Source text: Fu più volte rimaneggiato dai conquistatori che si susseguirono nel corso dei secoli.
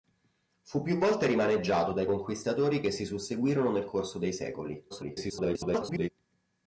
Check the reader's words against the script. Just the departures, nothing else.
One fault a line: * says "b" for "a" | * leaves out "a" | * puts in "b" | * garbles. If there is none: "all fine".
* garbles